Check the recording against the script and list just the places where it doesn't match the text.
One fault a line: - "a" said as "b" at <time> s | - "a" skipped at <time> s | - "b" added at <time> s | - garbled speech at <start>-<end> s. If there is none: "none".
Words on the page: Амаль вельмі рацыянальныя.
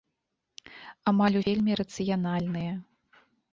none